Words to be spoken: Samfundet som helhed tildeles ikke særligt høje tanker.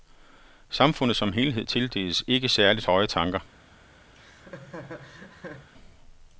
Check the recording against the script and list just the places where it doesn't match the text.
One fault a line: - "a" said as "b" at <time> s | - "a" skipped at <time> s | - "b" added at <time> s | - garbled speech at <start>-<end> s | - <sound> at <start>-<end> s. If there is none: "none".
- laugh at 4.1-5.7 s